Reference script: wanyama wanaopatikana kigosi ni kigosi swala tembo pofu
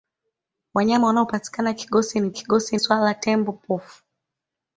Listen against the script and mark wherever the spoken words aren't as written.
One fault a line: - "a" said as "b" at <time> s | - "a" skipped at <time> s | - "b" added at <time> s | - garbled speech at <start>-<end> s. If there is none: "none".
none